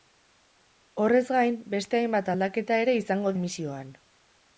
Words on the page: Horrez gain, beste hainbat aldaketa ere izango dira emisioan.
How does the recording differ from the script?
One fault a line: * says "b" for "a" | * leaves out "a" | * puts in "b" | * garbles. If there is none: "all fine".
* leaves out "dira"